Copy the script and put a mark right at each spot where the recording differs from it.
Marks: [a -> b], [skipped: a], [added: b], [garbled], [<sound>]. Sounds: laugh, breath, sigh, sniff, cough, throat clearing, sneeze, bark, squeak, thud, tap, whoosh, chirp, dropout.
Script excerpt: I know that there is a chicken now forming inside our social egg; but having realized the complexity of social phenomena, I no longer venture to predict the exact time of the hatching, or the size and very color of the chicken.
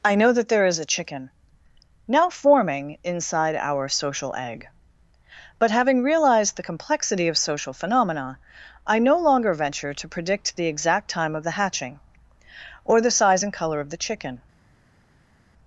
I know that there is a chicken now forming inside our social egg; but having realized the complexity of social phenomena, I no longer venture to predict the exact time of the hatching, or the size and [skipped: very] color of the chicken.